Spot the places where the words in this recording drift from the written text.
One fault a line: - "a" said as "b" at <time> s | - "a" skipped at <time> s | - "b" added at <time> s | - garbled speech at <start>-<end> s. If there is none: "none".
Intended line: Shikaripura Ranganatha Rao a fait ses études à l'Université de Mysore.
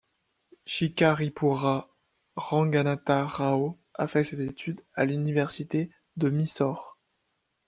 none